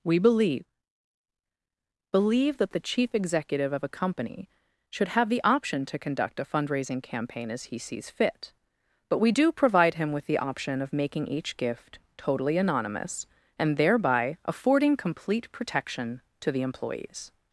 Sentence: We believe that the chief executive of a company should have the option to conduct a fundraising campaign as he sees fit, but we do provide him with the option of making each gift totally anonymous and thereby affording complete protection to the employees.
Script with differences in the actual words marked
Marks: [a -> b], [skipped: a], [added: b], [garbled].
We believe [added: believe] that the chief executive of a company should have the option to conduct a fundraising campaign as he sees fit, but we do provide him with the option of making each gift totally anonymous and thereby affording complete protection to the employees.